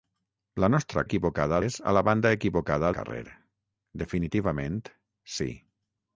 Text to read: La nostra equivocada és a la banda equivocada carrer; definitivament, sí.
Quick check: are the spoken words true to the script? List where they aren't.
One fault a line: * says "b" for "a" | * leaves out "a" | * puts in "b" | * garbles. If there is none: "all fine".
all fine